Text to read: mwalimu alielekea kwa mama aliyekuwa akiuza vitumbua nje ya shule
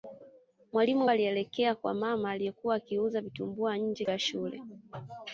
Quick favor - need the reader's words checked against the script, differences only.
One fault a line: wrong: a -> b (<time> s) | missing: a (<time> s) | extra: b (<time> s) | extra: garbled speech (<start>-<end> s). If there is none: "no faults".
no faults